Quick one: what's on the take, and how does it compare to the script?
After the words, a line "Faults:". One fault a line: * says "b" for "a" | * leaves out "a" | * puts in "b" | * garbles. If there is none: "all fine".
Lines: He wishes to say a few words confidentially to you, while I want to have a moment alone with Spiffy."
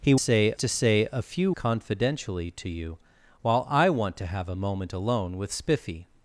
He say to say a few confidentially to you, while I want to have a moment alone with Spiffy."
Faults:
* says "say" for "wishes"
* leaves out "words"